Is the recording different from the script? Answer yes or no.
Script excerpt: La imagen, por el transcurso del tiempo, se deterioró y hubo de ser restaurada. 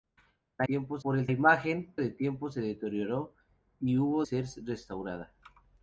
yes